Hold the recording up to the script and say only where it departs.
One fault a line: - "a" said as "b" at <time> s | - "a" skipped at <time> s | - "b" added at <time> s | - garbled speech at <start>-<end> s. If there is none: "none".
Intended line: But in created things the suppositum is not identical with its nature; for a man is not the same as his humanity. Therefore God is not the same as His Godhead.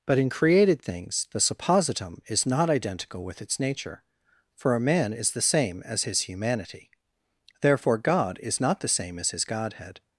- "not" skipped at 5.3 s